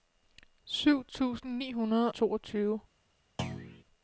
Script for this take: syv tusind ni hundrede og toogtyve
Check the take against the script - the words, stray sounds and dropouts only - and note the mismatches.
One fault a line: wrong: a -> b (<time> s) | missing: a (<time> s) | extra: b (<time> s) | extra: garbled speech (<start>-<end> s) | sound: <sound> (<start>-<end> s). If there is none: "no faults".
missing: og (2.1 s)
sound: thud (3.4-3.8 s)